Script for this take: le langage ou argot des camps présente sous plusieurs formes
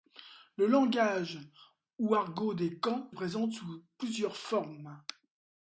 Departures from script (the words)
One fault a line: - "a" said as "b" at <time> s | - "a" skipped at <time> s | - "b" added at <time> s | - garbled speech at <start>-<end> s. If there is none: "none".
none